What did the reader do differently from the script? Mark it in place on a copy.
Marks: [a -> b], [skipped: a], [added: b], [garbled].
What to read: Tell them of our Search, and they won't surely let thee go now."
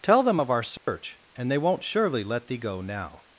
Tell them of our Search, and they won't surely let thee go now."